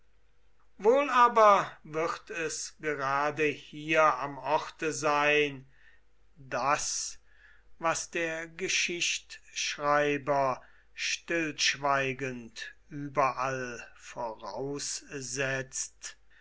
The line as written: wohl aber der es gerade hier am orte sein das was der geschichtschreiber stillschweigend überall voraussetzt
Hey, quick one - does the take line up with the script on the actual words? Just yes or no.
no